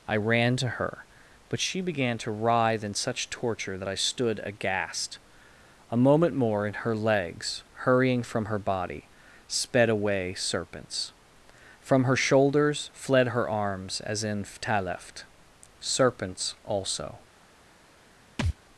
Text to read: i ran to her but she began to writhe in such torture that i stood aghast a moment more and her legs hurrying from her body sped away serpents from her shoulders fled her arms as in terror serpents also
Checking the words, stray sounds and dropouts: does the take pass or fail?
fail